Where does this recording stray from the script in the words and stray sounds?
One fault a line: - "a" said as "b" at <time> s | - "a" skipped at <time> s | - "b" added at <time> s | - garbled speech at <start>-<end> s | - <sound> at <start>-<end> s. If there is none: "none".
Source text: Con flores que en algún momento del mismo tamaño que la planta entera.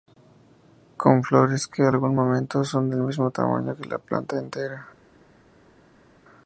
- "son" added at 2.7 s